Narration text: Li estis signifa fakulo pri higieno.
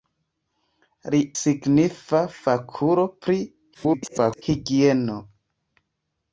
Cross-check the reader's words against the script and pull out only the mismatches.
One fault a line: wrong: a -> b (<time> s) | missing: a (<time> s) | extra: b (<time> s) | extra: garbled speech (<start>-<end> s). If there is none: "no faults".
missing: estis (1.2 s)
extra: garbled speech (3.7-4.4 s)